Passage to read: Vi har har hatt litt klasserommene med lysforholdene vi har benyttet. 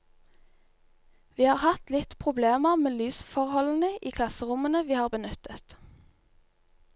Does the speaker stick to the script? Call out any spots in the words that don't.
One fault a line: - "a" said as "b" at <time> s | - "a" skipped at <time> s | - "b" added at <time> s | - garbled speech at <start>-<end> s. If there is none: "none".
- "har" skipped at 1.6 s
- "klasserommene" said as "problemer" at 2.2 s
- "i klasserommene" added at 4.0 s